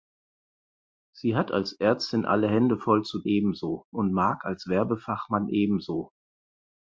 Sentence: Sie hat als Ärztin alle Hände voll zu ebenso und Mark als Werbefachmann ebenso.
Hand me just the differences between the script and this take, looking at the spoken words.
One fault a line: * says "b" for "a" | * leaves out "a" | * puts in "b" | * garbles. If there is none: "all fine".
all fine